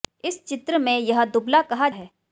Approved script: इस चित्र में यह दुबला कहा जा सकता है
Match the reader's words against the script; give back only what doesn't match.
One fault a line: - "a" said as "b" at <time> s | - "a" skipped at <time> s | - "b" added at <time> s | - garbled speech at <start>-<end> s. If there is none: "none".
- "जा सकता" skipped at 1.9 s